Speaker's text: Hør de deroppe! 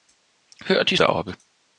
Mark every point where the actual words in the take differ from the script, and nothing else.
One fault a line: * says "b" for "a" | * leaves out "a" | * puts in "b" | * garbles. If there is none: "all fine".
all fine